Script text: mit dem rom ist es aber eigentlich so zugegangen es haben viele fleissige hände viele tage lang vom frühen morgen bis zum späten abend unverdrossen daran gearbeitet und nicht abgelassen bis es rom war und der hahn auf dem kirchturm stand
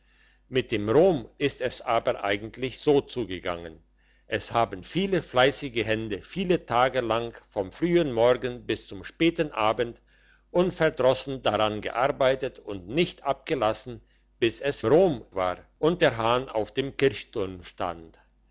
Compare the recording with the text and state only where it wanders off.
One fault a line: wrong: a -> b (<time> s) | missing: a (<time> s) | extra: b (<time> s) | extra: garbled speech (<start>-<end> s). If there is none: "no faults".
no faults